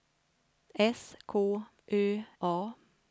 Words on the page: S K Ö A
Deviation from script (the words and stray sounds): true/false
false